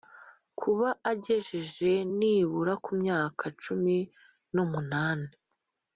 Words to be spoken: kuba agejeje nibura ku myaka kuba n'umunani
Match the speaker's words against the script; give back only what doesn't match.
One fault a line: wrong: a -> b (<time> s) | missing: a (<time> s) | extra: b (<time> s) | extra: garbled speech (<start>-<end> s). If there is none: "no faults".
wrong: kuba -> cumi (3.6 s)